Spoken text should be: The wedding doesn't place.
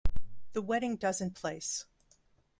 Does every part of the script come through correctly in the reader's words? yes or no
yes